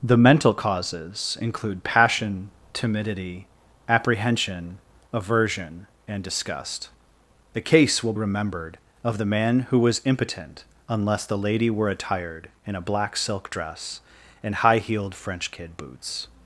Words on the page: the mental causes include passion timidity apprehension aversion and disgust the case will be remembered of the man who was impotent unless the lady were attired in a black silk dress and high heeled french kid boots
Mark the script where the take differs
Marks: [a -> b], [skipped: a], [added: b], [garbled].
the mental causes include passion timidity apprehension aversion and disgust the case will [skipped: be] remembered of the man who was impotent unless the lady were attired in a black silk dress and high heeled french kid boots